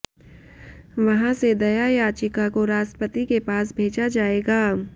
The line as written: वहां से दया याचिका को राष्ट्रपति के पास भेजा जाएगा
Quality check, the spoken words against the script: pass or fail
pass